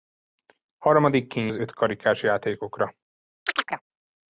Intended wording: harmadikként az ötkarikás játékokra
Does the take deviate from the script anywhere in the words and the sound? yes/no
yes